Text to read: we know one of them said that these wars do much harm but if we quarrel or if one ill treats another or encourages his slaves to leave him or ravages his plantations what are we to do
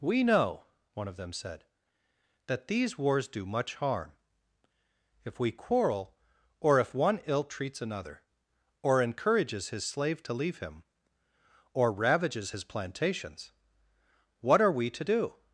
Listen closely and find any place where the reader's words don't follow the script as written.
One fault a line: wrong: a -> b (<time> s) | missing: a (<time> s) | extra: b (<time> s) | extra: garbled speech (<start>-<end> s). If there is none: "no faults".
missing: but (4.2 s)
wrong: slaves -> slave (9.8 s)